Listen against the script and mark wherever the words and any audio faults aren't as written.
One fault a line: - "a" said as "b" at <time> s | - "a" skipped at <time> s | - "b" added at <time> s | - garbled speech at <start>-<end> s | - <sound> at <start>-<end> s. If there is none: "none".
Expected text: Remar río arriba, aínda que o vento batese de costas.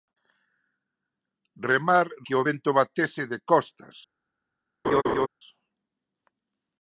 - "río arriba aínda" skipped at 2.1 s
- laugh at 4.8-5.3 s